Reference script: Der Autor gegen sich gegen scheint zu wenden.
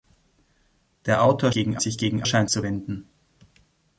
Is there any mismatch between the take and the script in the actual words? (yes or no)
no